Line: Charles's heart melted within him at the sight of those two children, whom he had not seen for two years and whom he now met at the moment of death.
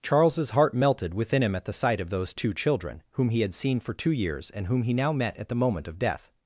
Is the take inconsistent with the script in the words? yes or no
yes